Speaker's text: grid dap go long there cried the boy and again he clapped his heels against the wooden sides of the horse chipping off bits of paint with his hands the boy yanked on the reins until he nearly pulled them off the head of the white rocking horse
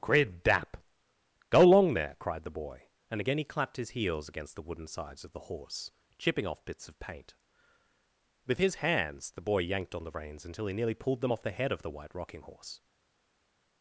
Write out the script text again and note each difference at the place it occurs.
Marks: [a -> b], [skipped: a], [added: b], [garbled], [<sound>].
grid dap go long there cried the boy and again he clapped his heels against the wooden sides of the horse chipping off bits of paint with his hands the boy yanked on the reins until he nearly pulled them off the head of the white rocking horse